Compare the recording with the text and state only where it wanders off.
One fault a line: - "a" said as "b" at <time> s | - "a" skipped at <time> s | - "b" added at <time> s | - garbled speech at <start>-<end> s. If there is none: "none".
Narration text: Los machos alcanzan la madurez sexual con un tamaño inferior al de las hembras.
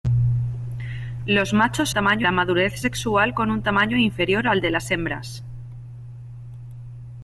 - "alcanzan" said as "tamaño" at 1.9 s